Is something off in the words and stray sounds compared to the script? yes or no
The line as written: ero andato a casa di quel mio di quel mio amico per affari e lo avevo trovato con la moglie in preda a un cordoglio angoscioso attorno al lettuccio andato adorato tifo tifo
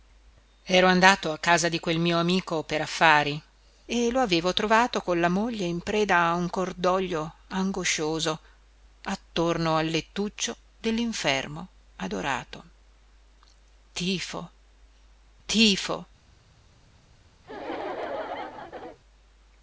yes